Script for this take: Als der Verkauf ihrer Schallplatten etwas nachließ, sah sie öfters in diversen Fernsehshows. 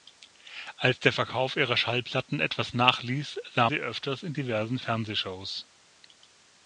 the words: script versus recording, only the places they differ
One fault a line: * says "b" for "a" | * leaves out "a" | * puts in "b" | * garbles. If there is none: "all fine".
all fine